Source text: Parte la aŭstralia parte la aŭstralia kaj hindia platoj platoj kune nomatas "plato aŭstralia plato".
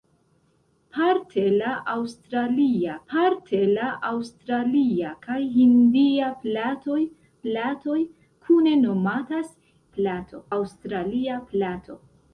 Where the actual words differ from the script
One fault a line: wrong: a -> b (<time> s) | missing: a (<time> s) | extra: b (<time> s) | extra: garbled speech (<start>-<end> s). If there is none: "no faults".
no faults